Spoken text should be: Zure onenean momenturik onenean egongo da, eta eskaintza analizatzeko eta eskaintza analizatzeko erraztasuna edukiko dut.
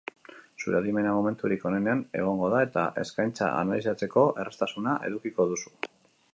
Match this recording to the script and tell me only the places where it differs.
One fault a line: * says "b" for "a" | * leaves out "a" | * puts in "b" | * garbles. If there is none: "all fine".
* says "adimena" for "onenean"
* leaves out "eta eskaintza analizatzeko"
* says "duzu" for "dut"